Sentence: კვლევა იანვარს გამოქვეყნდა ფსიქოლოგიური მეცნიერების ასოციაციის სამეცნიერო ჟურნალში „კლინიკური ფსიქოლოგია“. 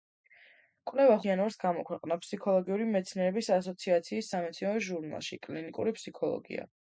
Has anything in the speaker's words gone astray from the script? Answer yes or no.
no